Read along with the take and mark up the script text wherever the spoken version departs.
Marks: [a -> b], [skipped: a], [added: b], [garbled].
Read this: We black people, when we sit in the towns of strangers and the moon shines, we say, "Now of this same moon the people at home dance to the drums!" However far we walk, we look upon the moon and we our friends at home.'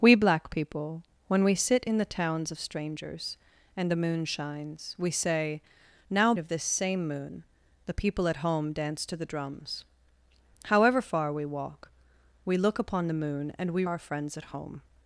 We black people, when we sit in the towns of strangers and the moon shines, we say, "Now of this same moon the people at home dance to the drums!" However far we walk, we look upon the moon and we our friends at home.'